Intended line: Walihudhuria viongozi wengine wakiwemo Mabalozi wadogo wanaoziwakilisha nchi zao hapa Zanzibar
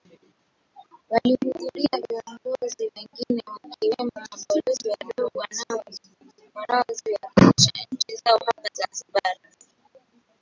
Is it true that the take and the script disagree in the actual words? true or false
false